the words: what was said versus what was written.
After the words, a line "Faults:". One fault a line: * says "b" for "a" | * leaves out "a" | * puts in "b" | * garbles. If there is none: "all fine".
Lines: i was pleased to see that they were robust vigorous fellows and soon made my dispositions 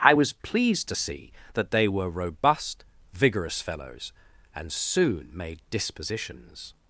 i was pleased to see that they were robust vigorous fellows and soon made dispositions
Faults:
* leaves out "my"